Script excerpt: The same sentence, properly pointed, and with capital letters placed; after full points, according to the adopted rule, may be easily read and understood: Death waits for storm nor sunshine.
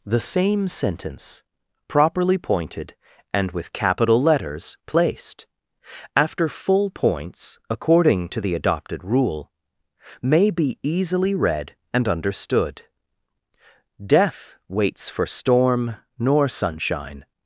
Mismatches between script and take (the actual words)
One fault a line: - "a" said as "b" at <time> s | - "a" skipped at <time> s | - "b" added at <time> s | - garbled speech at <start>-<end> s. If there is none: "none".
none